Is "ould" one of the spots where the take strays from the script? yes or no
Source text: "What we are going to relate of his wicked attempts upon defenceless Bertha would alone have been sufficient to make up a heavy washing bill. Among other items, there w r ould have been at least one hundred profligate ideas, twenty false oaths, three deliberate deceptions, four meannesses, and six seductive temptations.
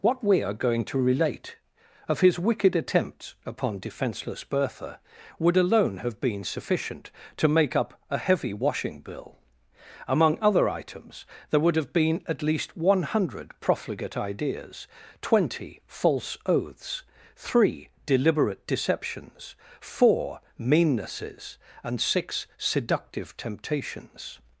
yes